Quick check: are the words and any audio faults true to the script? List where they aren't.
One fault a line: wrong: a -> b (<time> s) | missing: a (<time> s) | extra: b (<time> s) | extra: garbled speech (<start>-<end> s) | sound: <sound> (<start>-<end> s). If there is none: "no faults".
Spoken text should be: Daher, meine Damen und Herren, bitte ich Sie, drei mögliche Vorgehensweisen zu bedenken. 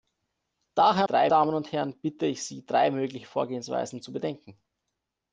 wrong: meine -> drei (1.0 s)